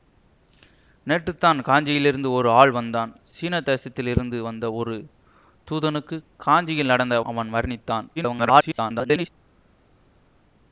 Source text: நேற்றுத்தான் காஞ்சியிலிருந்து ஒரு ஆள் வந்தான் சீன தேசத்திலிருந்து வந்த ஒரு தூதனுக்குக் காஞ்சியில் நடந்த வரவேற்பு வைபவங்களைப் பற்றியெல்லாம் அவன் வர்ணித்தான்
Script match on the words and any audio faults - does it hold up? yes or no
no